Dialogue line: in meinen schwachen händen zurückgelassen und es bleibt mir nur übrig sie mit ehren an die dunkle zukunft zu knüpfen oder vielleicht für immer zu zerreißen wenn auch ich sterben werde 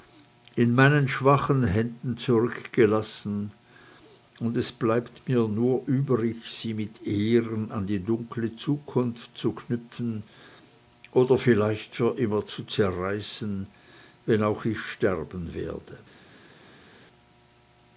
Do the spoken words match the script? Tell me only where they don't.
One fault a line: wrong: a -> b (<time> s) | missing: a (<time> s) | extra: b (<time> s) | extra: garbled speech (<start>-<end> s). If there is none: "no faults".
no faults